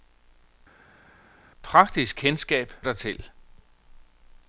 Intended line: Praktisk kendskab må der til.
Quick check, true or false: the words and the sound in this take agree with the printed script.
false